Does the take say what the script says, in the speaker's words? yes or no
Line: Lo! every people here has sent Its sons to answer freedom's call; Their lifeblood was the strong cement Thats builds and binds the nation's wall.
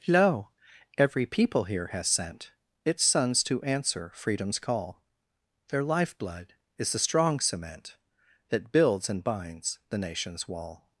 no